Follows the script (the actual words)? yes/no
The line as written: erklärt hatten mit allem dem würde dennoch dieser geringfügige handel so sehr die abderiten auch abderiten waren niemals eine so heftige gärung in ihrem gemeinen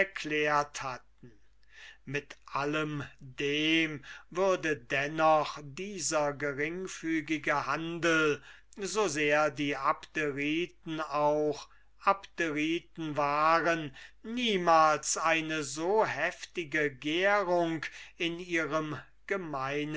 yes